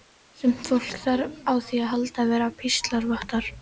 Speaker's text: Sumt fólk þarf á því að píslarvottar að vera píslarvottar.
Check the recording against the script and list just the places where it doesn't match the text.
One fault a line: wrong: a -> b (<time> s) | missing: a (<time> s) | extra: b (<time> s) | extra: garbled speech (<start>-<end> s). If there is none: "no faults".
wrong: píslarvottar -> halda (1.9 s)